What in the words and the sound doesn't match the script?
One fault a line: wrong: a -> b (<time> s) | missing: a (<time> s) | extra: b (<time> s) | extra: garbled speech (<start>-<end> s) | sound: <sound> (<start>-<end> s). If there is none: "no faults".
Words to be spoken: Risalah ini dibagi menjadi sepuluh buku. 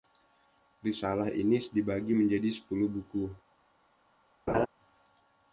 sound: laugh (4.5-4.7 s)